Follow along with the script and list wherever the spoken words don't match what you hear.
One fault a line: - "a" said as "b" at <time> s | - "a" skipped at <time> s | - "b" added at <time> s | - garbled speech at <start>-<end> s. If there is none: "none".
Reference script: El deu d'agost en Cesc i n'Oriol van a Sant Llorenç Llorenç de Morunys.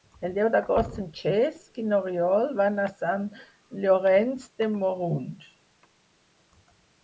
- "Llorenç" skipped at 4.5 s